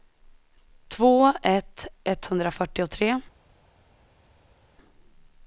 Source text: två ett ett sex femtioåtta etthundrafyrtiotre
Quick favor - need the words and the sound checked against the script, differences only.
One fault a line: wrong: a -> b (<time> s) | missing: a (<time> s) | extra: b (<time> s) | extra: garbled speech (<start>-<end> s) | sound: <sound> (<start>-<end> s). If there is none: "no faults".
missing: ett sex femtioåtta (1.9 s)